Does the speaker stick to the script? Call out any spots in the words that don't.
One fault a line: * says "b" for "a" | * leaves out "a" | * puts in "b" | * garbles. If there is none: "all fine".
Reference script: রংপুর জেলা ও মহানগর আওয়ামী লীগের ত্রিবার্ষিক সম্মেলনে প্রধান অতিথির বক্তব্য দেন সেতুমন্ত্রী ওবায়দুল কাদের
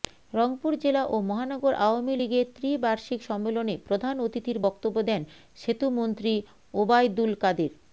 all fine